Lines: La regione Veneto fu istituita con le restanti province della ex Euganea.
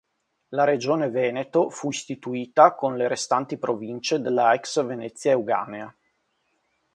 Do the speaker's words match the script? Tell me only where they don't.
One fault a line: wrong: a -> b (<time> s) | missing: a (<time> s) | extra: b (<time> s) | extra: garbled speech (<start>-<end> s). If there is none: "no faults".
extra: Venezia (4.8 s)